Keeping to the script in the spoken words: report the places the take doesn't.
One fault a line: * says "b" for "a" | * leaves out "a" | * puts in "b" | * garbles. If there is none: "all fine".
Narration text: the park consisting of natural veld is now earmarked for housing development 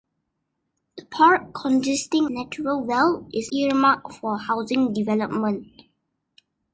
* leaves out "of"
* leaves out "now"